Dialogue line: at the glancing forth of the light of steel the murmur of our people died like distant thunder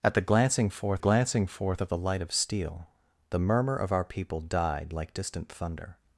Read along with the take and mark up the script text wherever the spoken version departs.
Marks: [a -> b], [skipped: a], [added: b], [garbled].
at the glancing forth [added: glancing forth] of the light of steel the murmur of our people died like distant thunder